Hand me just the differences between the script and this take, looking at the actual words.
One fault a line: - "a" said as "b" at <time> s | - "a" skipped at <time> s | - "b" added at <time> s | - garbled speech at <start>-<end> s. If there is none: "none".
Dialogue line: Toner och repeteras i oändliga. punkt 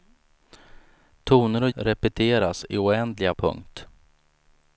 none